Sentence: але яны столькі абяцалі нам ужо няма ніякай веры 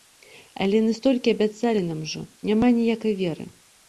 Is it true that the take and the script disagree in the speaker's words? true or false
false